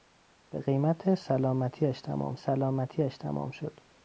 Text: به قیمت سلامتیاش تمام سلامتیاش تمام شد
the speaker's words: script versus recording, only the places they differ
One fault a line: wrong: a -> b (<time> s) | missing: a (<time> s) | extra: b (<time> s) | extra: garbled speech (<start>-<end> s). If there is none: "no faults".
no faults